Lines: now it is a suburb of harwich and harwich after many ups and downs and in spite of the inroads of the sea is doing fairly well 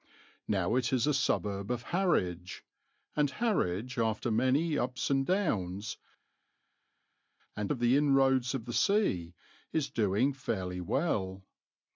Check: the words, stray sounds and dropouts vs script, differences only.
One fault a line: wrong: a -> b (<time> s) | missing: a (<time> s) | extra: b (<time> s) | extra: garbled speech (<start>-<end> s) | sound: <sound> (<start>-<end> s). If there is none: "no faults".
missing: in spite (7.7 s)